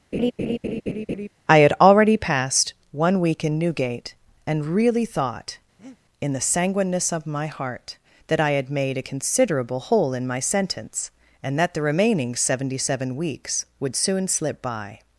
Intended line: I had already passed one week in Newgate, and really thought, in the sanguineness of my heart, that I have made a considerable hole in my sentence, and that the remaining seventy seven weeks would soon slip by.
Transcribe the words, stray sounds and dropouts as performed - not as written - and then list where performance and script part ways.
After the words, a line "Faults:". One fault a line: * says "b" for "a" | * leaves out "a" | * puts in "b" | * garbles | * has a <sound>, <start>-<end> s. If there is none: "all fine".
I had already passed one week in Newgate, and really thought, in the sanguineness of my heart, that I had made a considerable hole in my sentence, and that the remaining seventy seven weeks would soon slip by.
Faults:
* has a laugh, 0.1-1.3 s
* has a breath, 5.8-6.0 s
* says "had" for "have"